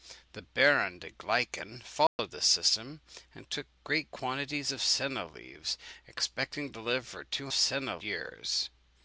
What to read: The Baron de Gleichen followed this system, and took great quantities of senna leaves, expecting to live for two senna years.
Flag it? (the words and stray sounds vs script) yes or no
yes